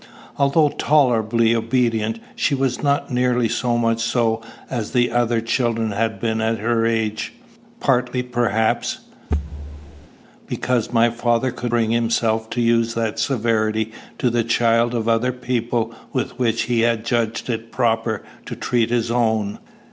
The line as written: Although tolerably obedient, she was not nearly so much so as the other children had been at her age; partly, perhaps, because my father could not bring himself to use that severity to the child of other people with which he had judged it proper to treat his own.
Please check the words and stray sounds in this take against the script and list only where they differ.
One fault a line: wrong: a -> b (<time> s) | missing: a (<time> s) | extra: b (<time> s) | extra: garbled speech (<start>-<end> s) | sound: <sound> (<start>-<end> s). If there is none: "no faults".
sound: thud (9.3-10.1 s)
missing: not (11.7 s)